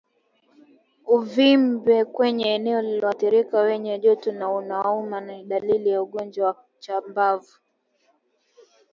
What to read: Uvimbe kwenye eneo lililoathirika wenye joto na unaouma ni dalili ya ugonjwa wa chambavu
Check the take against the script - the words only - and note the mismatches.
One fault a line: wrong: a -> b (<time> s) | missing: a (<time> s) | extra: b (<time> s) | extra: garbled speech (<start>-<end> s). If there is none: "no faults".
no faults